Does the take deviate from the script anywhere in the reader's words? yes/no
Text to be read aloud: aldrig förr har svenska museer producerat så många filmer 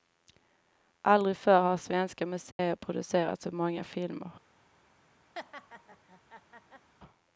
no